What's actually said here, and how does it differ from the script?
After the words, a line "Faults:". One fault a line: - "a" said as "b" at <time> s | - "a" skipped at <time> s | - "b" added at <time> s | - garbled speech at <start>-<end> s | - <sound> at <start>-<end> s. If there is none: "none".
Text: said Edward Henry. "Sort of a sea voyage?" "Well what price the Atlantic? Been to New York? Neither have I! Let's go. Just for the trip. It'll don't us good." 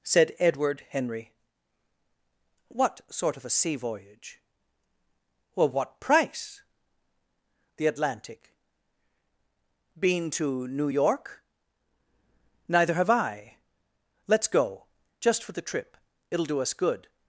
said Edward Henry. "What sort of a sea voyage?" "Well what price the Atlantic? Been to New York? Neither have I! Let's go. Just for the trip. It'll do us good."
Faults:
- "What" added at 2.7 s
- "don't" said as "do" at 16.5 s